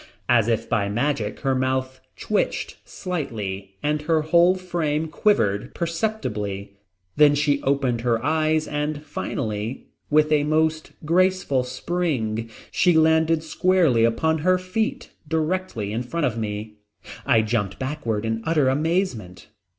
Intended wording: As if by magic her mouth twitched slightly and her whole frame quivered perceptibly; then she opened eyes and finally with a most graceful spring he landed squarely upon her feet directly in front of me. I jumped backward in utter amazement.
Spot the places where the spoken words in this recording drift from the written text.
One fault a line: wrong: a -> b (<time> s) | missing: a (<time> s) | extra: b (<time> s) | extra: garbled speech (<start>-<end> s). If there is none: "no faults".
extra: her (8.0 s)
wrong: he -> she (12.7 s)